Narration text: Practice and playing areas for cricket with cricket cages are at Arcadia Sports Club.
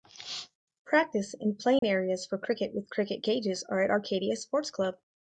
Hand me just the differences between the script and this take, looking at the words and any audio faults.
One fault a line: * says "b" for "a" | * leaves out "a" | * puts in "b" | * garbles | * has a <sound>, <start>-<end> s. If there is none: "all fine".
* has a dropout, 1.8-1.8 s